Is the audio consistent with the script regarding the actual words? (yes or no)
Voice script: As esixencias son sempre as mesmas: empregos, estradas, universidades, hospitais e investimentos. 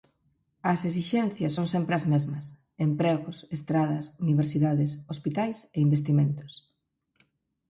yes